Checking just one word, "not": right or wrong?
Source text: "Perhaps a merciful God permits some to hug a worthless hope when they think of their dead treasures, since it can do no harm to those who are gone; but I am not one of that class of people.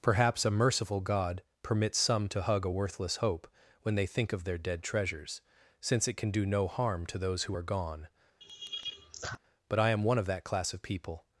wrong